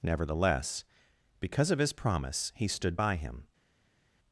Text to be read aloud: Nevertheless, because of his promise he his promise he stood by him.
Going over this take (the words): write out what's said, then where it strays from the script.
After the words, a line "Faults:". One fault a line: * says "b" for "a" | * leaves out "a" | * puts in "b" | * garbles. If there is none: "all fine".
Nevertheless, because of his promise he stood by him.
Faults:
* leaves out "his promise he"